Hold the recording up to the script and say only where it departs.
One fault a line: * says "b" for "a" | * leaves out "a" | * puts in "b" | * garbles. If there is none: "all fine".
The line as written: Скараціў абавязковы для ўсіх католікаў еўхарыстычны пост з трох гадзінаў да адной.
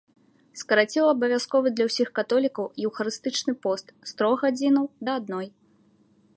all fine